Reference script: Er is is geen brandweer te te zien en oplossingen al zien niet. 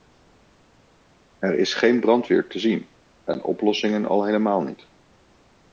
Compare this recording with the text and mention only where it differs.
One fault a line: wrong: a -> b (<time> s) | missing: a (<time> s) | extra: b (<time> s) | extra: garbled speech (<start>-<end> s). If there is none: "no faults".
missing: is (1.7 s)
missing: te (2.6 s)
wrong: zien -> helemaal (4.2 s)